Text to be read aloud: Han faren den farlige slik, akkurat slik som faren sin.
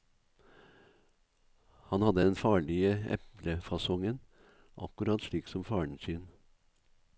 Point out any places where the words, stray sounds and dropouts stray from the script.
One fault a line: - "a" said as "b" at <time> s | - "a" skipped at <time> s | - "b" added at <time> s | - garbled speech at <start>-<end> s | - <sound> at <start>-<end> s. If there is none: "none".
- "faren" said as "hadde" at 2.0 s
- "slik" said as "eplefasongen" at 3.2 s